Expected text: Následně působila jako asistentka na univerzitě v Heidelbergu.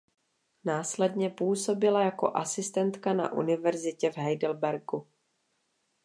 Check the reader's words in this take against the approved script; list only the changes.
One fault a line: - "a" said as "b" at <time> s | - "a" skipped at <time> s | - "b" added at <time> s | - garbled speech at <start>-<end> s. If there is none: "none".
none